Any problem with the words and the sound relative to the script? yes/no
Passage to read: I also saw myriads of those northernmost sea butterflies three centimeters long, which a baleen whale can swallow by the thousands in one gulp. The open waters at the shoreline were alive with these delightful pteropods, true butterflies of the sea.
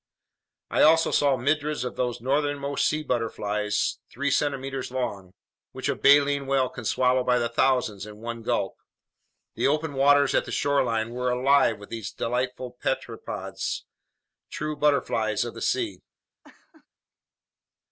yes